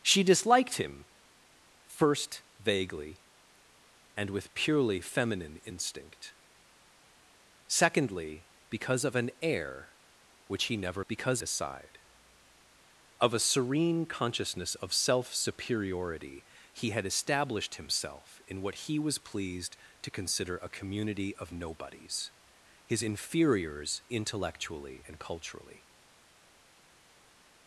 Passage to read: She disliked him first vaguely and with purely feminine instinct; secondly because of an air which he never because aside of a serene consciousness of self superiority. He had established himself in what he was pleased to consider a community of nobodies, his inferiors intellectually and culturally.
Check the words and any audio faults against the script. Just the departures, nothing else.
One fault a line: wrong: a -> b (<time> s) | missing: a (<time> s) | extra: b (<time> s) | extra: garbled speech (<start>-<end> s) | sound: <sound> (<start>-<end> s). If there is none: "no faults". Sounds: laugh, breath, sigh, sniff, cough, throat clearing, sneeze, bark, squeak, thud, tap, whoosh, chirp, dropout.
no faults